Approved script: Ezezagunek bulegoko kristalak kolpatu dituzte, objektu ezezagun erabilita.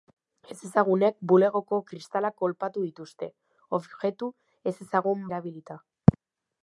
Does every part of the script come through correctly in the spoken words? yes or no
yes